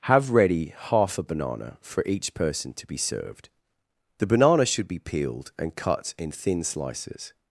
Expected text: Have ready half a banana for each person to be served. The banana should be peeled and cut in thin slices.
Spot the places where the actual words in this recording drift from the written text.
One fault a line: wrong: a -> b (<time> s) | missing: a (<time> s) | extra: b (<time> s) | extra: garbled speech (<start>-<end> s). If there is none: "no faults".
no faults